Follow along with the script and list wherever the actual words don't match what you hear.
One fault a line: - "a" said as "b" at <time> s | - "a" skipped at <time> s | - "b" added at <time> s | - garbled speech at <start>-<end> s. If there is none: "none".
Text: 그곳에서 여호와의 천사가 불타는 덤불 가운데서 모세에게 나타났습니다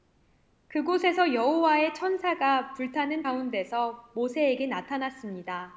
- "덤불" skipped at 3.2 s